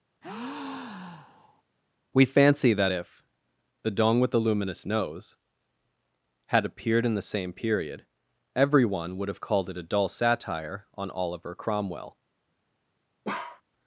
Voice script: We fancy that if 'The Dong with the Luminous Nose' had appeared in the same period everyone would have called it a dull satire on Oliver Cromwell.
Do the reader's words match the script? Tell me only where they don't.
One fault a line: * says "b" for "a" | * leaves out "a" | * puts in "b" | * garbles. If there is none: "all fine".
all fine